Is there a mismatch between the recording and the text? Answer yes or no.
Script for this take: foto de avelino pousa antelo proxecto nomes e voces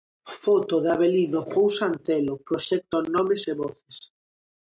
no